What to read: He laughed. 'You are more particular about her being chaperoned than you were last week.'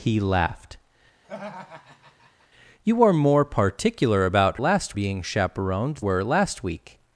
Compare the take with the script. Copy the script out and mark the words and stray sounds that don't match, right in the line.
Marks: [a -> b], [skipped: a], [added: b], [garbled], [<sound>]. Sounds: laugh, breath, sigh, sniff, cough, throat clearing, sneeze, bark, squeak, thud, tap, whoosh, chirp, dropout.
He laughed. [laugh] 'You are more particular about [her -> last] being chaperoned [skipped: than you] were last week.'